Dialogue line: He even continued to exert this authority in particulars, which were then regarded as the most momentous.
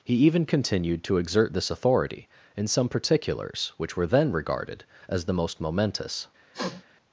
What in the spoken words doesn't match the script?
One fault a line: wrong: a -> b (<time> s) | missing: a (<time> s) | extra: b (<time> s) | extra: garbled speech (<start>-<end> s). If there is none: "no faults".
extra: some (2.7 s)